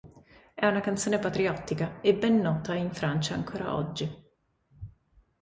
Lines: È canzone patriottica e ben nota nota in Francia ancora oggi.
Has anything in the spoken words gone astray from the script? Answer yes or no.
yes